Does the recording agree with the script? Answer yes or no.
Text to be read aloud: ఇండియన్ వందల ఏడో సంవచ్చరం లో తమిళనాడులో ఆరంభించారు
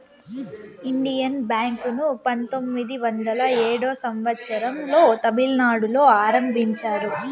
no